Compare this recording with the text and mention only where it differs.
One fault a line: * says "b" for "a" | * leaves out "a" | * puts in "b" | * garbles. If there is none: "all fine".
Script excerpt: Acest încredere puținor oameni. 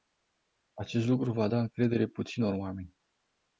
* puts in "lucru va da"